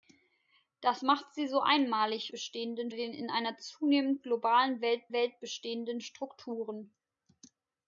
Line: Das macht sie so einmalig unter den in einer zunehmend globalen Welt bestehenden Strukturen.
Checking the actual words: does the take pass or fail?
fail